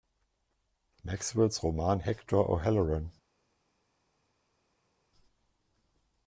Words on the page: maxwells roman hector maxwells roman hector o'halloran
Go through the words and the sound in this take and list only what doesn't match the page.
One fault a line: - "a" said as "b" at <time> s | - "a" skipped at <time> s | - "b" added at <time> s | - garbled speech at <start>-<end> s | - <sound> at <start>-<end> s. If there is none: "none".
- "maxwells roman hector" skipped at 2.4 s